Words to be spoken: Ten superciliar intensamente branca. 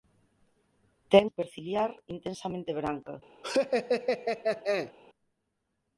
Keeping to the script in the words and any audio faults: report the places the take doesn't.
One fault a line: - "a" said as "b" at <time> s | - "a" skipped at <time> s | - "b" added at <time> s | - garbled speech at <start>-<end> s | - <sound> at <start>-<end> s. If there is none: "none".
- laugh at 3.4-4.9 s